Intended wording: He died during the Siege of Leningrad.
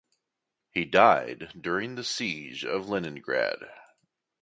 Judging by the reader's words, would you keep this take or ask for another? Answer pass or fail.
pass